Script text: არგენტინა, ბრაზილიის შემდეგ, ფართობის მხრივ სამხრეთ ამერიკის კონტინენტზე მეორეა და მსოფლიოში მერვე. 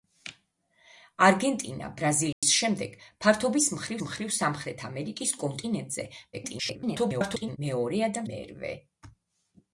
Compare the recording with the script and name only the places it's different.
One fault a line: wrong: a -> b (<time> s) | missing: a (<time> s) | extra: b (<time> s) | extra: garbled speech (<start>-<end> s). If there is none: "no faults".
extra: მხრივ (4.1 s)
extra: garbled speech (6.3-7.6 s)
missing: მსოფლიოში (8.2 s)